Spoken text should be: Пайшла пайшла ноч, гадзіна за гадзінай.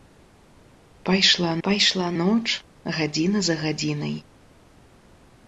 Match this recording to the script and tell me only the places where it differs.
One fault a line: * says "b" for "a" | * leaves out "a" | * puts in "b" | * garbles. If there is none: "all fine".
all fine